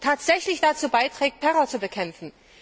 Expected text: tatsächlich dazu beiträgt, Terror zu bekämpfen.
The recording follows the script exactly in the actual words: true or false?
true